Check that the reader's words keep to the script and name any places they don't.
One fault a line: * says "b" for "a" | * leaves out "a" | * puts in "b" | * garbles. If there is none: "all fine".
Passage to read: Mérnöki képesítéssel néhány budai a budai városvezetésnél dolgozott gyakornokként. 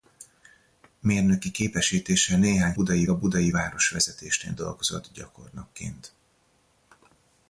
all fine